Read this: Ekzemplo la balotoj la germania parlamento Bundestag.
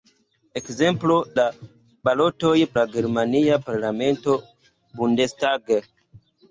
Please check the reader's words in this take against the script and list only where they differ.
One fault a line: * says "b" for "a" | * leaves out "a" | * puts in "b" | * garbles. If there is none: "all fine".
all fine